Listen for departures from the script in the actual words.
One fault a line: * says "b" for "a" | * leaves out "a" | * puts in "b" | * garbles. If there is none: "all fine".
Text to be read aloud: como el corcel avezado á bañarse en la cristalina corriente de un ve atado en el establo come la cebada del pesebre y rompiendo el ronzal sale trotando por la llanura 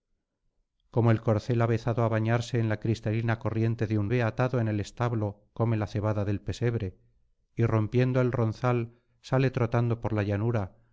all fine